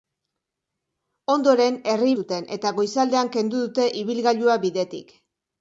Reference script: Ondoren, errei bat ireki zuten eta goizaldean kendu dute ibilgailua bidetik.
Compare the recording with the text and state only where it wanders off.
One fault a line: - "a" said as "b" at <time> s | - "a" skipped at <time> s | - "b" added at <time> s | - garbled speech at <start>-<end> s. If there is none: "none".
- "bat ireki" skipped at 2.1 s